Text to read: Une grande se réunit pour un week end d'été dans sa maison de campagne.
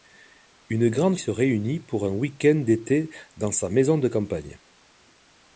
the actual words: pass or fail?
pass